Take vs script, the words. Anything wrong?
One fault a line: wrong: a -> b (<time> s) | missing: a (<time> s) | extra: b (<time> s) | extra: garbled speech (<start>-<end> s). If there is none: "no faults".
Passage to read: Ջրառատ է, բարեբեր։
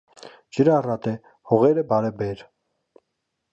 extra: հողերը (1.5 s)